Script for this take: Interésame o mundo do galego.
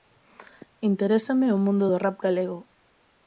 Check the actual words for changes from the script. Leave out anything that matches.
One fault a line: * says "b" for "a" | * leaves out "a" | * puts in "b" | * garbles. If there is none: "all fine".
* puts in "rap"